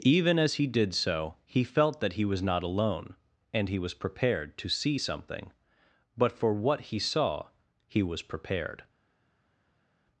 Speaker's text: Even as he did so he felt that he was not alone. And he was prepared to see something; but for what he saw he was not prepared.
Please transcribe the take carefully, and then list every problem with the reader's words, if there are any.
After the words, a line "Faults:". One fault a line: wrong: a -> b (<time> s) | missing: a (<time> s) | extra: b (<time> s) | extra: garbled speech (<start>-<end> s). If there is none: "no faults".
Even as he did so he felt that he was not alone. And he was prepared to see something; but for what he saw he was prepared.
Faults:
missing: not (8.2 s)